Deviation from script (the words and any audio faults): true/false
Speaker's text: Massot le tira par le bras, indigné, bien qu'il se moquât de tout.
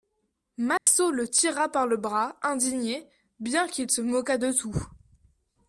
true